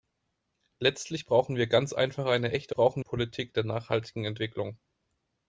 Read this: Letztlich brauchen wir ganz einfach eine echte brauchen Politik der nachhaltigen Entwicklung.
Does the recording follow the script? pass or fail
pass